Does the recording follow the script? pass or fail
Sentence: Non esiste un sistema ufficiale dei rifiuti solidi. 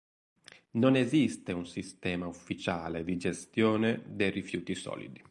fail